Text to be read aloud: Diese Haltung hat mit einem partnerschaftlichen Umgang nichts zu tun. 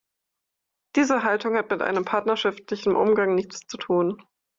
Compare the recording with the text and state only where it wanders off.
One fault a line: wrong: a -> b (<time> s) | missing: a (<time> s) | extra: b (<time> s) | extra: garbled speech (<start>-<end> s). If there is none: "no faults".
no faults